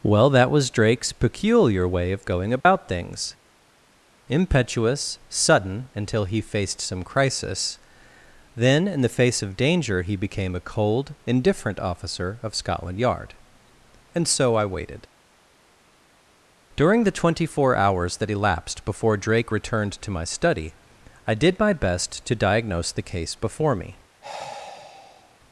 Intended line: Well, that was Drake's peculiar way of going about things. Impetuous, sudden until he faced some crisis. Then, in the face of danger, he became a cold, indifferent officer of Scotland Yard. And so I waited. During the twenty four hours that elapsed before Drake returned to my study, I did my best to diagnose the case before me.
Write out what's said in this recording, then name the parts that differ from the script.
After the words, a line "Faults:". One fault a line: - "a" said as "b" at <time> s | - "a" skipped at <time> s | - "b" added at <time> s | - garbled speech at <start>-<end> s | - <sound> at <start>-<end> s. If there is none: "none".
Well, that was Drake's peculiar way of going about things. Impetuous, sudden until he faced some crisis. Then, in the face of danger, he became a cold, indifferent officer of Scotland Yard. And so I waited. During the twenty four hours that elapsed before Drake returned to my study, I did my best to diagnose the case before me.
Faults:
- dropout at 2.6-2.7 s
- sigh at 24.2-25.4 s